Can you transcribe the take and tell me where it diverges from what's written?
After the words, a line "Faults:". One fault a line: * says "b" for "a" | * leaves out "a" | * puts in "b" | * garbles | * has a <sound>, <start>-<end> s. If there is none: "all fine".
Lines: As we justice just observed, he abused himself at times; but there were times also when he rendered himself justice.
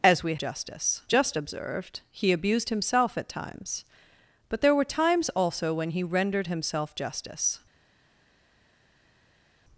As we justice just observed, he abused himself at times; but there were times also when he rendered himself justice.
Faults:
all fine